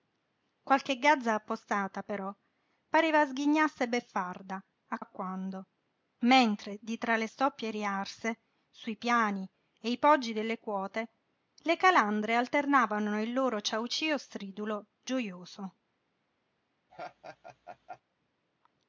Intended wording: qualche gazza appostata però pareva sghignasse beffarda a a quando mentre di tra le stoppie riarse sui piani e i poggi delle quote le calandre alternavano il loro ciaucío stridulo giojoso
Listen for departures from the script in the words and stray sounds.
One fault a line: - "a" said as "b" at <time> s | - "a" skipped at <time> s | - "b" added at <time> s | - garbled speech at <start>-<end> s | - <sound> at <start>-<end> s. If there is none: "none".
- laugh at 16.9-18.0 s